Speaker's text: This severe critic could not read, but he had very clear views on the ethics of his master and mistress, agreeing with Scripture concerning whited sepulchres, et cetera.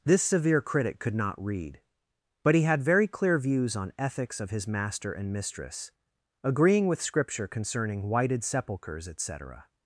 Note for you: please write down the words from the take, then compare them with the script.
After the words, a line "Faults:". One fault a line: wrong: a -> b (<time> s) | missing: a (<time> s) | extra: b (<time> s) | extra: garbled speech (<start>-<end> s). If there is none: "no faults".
This severe critic could not read, but he had very clear views on ethics of his master and mistress, agreeing with Scripture concerning whited sepulchres, et cetera.
Faults:
missing: the (3.9 s)